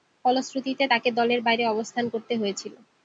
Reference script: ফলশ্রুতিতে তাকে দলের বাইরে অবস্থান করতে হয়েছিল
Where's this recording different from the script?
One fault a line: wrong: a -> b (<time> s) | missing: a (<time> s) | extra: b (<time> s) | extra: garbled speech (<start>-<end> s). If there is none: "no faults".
no faults